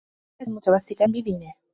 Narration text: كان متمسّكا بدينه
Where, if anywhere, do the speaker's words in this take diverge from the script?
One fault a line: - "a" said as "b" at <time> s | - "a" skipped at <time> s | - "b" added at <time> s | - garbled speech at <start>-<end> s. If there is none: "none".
none